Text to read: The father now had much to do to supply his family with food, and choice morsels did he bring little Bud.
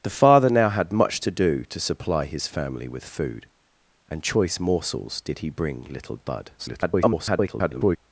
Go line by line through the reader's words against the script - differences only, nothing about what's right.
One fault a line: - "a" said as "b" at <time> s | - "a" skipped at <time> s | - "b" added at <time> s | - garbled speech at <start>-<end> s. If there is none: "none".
- garbled speech at 6.6-8.0 s